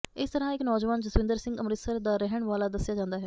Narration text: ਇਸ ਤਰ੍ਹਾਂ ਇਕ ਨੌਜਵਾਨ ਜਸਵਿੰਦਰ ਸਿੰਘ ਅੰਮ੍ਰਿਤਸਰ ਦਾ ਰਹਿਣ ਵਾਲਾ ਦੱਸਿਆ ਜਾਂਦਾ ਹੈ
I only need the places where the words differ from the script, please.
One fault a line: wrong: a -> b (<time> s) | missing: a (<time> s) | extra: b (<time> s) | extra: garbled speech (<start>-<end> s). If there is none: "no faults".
no faults